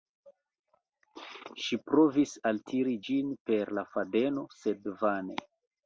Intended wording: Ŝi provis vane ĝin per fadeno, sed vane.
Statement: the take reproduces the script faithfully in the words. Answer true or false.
false